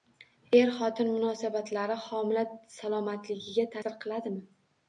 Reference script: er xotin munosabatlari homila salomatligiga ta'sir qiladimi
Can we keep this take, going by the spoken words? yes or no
yes